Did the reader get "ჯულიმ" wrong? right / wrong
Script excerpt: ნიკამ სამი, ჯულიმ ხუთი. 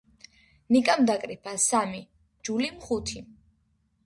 right